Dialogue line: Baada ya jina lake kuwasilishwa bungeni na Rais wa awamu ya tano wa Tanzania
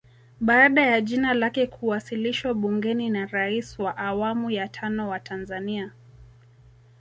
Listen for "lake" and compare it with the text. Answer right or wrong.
right